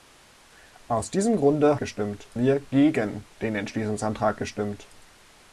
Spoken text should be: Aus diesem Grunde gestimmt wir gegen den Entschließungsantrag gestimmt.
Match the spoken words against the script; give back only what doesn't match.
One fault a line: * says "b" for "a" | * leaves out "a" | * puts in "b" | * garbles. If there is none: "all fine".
all fine